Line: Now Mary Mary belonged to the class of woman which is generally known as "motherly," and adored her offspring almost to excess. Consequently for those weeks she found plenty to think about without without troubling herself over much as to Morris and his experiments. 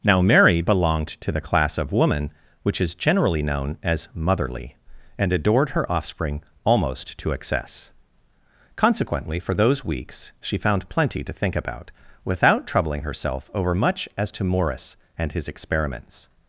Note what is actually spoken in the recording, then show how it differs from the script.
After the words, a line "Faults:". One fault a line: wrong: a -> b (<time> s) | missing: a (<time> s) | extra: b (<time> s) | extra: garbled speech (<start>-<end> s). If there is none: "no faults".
Now Mary belonged to the class of woman which is generally known as "motherly," and adored her offspring almost to excess. Consequently for those weeks she found plenty to think about without troubling herself over much as to Morris and his experiments.
Faults:
missing: Mary (0.6 s)
missing: without (12.7 s)